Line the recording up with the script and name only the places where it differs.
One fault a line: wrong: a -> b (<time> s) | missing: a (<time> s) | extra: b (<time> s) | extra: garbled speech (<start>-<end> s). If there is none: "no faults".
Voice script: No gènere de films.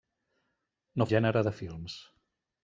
no faults